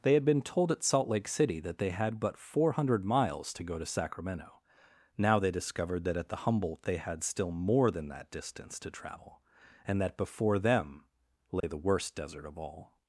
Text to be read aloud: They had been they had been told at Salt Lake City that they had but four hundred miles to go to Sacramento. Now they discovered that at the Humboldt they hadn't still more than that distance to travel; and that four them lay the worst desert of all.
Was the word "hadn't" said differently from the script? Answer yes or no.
yes